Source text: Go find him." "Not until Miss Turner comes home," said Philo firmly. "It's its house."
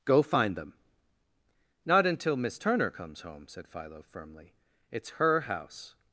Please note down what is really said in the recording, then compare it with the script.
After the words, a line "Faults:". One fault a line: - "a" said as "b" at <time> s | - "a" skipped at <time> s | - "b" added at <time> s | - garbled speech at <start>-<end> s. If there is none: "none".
Go find them." "Not until Miss Turner comes home," said Philo firmly. "It's her house."
Faults:
- "him" said as "them" at 0.6 s
- "its" said as "her" at 5.1 s